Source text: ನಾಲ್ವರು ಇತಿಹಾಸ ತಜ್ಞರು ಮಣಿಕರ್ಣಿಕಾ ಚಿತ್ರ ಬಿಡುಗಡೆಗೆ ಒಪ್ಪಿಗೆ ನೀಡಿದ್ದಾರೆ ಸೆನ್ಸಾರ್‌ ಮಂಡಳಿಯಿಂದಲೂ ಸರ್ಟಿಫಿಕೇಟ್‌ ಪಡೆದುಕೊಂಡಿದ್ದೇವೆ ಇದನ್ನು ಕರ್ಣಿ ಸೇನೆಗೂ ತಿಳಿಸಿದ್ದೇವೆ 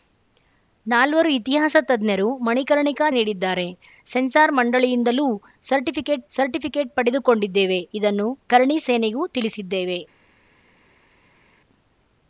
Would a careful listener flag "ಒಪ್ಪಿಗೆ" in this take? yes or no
yes